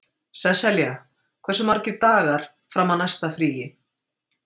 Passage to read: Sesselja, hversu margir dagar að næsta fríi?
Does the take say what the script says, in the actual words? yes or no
no